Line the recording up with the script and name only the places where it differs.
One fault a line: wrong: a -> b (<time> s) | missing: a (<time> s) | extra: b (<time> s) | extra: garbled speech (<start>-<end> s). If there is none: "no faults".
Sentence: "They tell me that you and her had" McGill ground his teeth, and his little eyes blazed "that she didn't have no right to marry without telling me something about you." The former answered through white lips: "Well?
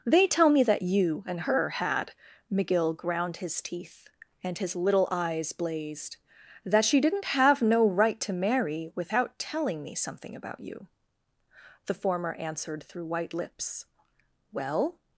no faults